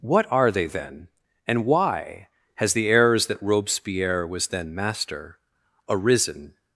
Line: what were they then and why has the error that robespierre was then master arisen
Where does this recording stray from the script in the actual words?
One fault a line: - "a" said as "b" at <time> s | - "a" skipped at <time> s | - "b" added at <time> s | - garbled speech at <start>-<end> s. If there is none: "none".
- "were" said as "are" at 0.3 s
- "error" said as "errors" at 2.9 s